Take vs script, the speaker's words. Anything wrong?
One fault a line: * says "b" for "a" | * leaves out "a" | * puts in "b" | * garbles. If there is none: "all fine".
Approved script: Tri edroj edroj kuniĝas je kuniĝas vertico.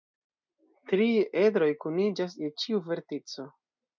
* leaves out "edroj"
* says "ĉiu" for "kuniĝas"